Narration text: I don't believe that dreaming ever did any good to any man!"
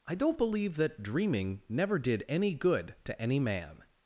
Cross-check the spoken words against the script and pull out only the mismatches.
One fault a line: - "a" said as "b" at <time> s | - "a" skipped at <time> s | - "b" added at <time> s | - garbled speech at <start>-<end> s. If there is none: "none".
- "ever" said as "never" at 1.7 s